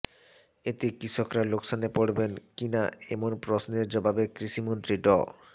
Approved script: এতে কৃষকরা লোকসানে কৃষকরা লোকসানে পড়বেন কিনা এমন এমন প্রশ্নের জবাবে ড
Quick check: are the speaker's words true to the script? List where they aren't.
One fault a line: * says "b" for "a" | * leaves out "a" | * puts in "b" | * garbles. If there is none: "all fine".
* leaves out "কৃষকরা লোকসানে"
* leaves out "এমন"
* puts in "কৃষিমন্ত্রী"